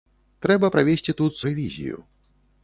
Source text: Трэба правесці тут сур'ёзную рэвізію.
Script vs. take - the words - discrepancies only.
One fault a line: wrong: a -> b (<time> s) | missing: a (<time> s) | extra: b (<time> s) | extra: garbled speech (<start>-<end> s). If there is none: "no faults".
missing: сур'ёзную (1.4 s)